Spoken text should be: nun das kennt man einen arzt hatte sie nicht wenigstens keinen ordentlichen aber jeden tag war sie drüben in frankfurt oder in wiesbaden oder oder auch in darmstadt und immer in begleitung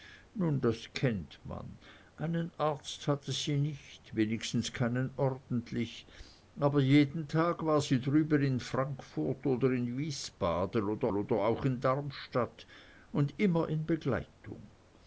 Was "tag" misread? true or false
false